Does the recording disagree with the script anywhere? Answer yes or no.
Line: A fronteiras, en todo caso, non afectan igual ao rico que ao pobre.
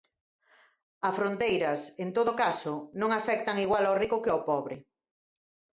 no